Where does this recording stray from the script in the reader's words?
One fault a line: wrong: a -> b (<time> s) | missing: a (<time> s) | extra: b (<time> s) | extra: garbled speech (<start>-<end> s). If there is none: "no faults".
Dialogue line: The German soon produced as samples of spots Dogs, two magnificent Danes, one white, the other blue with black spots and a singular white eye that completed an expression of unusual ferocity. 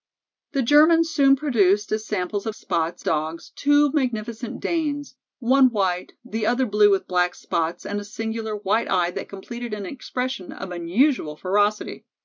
no faults